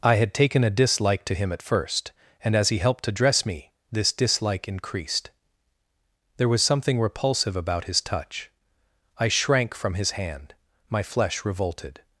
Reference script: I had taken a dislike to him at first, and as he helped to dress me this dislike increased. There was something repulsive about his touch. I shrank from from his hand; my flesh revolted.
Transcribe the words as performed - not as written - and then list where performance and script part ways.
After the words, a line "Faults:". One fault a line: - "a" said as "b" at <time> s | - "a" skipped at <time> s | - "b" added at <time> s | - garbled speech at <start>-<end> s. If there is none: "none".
I had taken a dislike to him at first, and as he helped to dress me this dislike increased. There was something repulsive about his touch. I shrank from his hand; my flesh revolted.
Faults:
- "from" skipped at 9.9 s